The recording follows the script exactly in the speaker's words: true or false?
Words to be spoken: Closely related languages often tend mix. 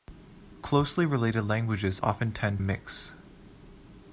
true